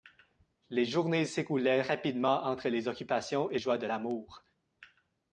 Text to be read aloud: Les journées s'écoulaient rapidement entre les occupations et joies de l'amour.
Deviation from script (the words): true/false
false